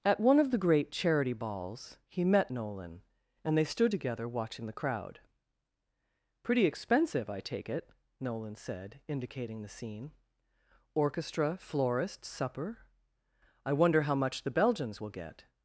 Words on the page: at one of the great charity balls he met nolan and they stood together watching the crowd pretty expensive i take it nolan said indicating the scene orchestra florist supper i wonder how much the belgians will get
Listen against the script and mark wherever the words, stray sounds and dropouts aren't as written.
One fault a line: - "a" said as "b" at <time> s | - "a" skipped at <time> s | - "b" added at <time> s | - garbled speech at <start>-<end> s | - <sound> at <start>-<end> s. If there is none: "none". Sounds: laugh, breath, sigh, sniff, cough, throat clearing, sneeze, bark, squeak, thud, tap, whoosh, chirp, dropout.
none